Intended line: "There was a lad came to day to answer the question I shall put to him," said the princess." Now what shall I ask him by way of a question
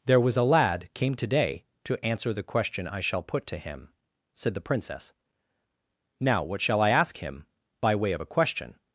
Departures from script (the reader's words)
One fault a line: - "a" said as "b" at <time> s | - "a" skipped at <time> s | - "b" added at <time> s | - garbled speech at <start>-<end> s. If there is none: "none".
none